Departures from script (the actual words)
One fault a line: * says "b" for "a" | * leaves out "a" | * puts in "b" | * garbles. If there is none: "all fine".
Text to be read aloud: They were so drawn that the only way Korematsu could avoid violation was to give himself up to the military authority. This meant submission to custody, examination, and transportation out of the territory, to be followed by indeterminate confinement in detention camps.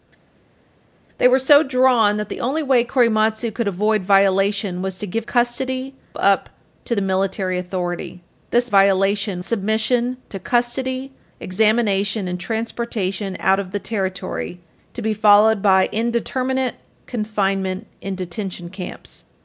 * says "custody" for "himself"
* says "violation" for "meant"